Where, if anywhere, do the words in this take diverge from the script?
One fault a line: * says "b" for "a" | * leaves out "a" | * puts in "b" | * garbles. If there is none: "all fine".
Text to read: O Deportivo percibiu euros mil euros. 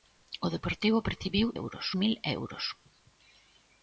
all fine